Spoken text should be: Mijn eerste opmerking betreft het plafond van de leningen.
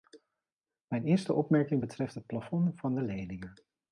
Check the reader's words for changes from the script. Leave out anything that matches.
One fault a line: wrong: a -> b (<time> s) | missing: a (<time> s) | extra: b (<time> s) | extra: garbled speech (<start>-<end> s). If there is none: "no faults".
no faults